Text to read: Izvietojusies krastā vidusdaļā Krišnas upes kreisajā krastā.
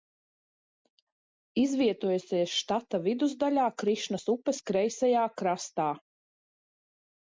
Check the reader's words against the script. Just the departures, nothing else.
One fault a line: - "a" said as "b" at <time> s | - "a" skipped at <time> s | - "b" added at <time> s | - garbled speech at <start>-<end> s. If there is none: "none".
- "krastā" said as "štata" at 2.6 s